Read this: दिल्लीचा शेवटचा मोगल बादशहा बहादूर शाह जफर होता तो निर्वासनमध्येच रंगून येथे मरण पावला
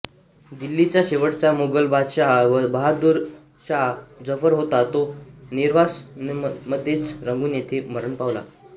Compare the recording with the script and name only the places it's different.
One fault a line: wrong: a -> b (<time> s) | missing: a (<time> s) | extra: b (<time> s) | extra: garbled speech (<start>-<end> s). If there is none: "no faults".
no faults